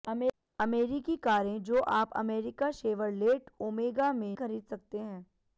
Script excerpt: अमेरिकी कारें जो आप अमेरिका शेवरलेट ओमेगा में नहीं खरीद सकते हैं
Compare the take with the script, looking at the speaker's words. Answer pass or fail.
fail